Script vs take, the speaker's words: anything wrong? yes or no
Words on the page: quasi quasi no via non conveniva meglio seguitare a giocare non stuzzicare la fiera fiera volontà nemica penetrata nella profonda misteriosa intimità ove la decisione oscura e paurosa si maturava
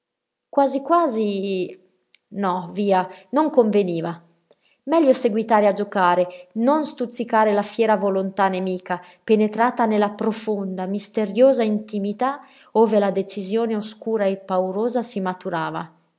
yes